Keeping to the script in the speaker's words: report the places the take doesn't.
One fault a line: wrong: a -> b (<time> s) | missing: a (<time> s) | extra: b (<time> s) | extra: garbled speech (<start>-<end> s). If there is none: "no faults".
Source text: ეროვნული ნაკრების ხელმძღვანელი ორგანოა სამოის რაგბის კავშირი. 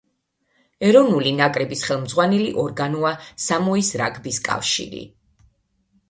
no faults